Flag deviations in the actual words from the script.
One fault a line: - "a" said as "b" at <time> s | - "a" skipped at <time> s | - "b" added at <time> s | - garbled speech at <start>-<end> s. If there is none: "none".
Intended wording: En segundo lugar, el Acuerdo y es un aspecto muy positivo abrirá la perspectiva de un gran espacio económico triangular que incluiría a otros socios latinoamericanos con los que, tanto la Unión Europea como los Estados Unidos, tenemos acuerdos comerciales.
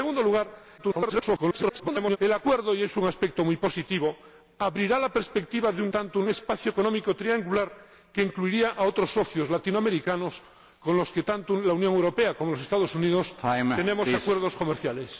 - garbled speech at 0.8-2.2 s
- "gran" said as "tanto" at 5.9 s